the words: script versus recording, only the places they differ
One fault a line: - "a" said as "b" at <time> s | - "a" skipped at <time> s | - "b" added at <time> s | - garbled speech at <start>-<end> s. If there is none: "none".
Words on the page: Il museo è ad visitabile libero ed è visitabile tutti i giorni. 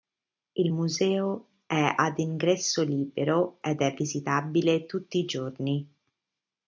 - "visitabile" said as "ingresso" at 2.2 s